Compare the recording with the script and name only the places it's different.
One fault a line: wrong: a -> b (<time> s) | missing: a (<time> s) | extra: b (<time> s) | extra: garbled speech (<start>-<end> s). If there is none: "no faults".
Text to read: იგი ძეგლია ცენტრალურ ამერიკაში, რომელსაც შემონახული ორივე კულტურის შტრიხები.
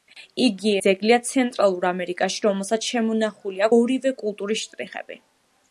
no faults